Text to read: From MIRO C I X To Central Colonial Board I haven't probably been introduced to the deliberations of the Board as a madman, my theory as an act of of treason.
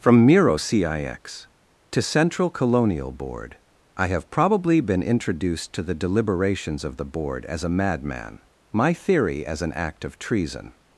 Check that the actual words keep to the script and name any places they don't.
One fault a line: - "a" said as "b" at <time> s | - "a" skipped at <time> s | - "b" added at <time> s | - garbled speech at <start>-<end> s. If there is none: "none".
- "haven't" said as "have" at 4.1 s
- "of" skipped at 10.2 s